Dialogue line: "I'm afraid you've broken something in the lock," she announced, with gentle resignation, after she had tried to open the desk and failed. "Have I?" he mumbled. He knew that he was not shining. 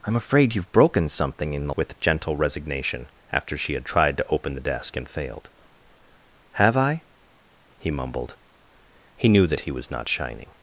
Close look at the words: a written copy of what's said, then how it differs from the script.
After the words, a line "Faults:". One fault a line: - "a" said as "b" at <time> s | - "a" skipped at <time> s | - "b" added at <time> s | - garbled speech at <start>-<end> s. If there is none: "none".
"I'm afraid you've broken something in the with gentle resignation, after she had tried to open the desk and failed. "Have I?" he mumbled. He knew that he was not shining.
Faults:
- "lock she announced" skipped at 1.8 s